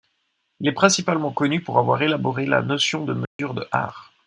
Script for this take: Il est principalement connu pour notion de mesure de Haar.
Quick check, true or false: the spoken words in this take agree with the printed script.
false